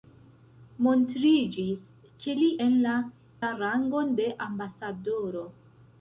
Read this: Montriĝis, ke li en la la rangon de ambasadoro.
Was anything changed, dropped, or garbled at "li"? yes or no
no